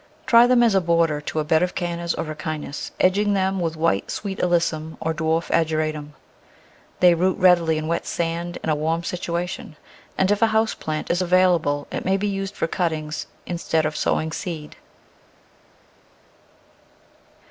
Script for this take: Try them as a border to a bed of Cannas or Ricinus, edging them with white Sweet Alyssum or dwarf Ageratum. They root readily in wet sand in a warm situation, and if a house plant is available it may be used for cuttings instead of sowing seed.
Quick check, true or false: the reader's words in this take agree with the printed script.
true